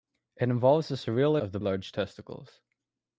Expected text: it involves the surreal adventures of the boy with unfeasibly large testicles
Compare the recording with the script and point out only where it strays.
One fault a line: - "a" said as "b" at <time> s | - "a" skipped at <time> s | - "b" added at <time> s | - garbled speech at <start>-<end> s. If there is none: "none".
- "adventures" skipped at 1.4 s
- "boy with unfeasibly" skipped at 1.6 s